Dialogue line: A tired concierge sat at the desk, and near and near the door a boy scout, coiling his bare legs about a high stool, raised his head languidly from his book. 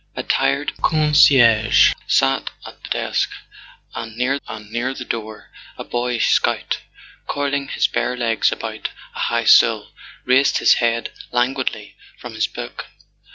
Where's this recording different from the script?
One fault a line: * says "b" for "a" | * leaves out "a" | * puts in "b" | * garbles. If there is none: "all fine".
all fine